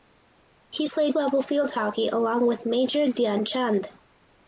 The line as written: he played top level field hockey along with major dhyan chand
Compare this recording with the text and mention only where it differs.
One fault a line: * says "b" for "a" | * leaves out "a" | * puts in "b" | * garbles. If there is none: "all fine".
* leaves out "top"